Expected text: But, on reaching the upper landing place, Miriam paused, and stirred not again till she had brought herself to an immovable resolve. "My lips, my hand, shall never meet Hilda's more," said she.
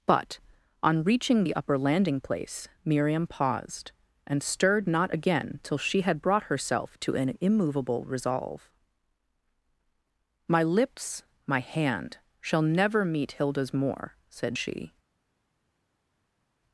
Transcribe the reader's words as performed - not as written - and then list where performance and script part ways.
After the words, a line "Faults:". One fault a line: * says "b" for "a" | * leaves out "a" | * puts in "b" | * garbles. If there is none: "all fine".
But, on reaching the upper landing place, Miriam paused, and stirred not again till she had brought herself to an immovable resolve. "My lips, my hand, shall never meet Hilda's more," said she.
Faults:
all fine